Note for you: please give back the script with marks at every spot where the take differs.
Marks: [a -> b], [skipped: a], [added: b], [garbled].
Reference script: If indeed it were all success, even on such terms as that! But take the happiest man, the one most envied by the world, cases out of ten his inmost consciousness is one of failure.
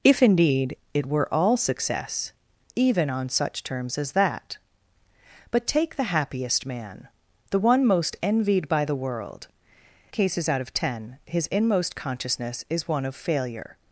If indeed it were all success, even on such terms as that! But take the happiest man, the one most envied by the world, cases out of ten his inmost consciousness is one of failure.